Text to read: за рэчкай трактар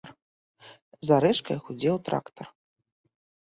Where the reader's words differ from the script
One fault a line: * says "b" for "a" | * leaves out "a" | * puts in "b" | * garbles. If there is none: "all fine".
* puts in "гудзеў"